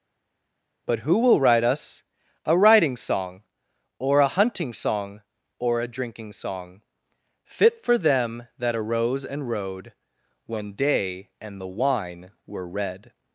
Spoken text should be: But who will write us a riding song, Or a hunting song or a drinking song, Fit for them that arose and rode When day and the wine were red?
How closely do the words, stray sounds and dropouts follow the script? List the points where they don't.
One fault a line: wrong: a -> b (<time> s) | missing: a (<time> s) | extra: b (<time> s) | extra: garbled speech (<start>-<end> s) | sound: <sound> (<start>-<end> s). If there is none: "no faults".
no faults